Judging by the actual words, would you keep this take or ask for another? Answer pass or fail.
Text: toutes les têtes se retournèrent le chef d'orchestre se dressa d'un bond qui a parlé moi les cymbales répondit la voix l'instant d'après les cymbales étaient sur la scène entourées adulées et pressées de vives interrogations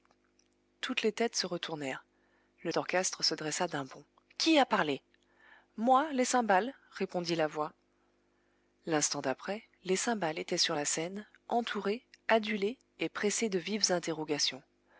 fail